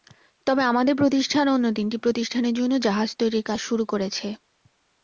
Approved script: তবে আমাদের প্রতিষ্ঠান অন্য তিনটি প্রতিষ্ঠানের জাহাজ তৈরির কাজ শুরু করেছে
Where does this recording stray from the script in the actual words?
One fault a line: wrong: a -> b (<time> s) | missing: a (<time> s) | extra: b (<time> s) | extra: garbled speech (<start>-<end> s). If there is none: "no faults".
extra: জন্য (2.6 s)